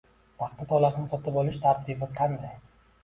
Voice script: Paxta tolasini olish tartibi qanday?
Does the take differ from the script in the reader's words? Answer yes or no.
yes